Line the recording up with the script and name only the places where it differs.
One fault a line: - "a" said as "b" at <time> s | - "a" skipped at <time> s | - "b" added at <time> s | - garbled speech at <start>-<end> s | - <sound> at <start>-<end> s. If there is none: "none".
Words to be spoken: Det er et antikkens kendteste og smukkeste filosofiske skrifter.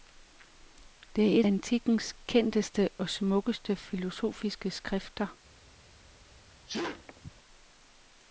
- sneeze at 6.7-7.3 s